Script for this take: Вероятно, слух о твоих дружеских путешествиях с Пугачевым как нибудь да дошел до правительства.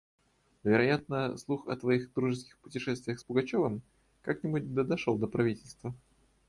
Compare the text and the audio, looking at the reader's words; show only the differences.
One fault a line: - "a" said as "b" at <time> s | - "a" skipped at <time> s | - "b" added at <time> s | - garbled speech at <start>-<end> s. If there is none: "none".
none